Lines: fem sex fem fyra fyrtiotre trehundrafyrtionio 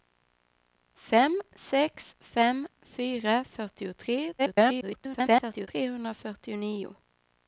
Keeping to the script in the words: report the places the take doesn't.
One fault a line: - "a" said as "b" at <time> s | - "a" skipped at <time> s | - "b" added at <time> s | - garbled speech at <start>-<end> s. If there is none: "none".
- garbled speech at 4.4-5.7 s